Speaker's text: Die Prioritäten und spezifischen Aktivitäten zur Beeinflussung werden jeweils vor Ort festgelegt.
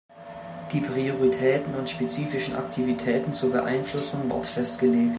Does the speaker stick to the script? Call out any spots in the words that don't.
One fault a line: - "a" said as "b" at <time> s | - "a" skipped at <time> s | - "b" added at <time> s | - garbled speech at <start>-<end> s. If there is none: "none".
- "werden jeweils vor" skipped at 4.3 s